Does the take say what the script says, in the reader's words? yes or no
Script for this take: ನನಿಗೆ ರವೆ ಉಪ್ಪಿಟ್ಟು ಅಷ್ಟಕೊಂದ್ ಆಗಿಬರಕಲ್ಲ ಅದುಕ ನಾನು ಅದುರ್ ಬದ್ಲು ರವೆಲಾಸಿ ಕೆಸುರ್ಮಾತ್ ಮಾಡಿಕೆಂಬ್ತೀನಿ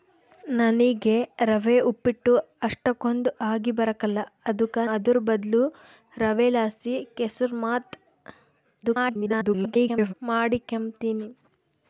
no